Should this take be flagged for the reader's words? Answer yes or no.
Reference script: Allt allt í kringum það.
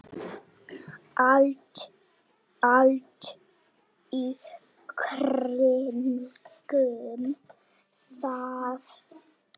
no